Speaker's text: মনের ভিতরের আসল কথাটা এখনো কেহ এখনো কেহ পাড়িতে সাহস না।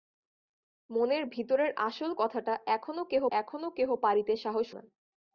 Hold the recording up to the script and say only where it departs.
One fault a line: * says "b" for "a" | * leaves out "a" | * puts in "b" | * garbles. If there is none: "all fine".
all fine